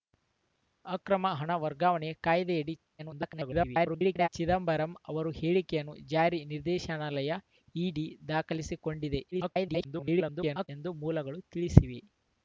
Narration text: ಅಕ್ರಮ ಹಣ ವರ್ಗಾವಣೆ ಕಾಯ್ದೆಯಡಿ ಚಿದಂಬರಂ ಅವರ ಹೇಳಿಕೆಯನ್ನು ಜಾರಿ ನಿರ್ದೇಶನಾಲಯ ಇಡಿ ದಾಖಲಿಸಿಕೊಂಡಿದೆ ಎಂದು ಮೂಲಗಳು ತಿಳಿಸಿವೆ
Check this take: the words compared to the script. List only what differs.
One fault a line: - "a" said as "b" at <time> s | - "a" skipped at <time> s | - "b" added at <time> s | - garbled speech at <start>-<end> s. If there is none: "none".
- garbled speech at 3.0-4.3 s
- garbled speech at 9.3-10.7 s